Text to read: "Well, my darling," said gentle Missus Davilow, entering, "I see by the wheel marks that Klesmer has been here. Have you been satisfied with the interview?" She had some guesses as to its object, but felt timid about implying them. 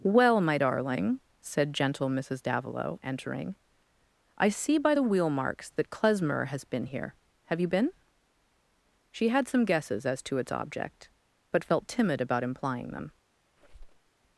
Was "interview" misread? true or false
true